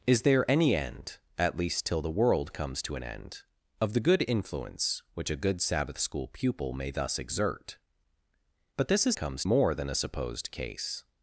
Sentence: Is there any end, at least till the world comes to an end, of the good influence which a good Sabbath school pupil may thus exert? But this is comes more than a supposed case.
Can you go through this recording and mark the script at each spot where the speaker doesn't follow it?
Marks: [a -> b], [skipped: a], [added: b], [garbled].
Is there any end, at least till the world comes to an end, of the good influence which a good Sabbath school pupil may thus exert? But this is comes more than a supposed case.